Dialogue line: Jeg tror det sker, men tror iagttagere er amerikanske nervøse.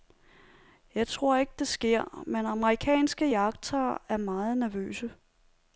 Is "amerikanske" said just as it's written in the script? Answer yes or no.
no